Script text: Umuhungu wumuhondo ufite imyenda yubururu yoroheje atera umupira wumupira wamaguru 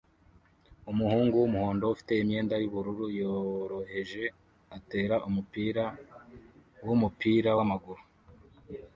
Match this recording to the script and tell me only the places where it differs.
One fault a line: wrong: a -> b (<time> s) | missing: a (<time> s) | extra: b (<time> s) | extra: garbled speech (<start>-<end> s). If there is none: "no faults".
no faults